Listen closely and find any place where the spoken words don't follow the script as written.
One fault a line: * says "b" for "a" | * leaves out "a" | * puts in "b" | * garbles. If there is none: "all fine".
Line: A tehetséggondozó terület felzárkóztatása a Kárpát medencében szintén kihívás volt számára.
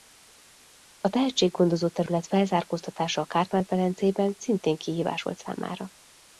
all fine